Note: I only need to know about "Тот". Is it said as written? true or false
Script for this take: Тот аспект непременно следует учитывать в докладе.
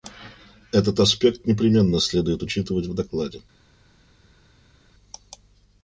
false